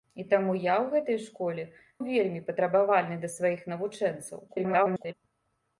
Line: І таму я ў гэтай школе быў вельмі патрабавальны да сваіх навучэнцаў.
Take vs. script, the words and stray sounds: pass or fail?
fail